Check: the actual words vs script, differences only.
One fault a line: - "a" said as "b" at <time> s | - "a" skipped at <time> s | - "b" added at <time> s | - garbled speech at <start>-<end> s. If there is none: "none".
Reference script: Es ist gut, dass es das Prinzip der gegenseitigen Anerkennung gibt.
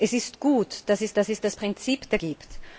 - "dass es" added at 1.1 s
- "gegenseitigen Anerkennung" skipped at 2.2 s